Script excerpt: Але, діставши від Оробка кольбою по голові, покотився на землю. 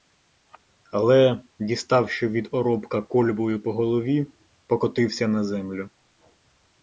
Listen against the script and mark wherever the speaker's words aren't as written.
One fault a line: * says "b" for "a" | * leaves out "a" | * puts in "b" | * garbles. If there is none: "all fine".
all fine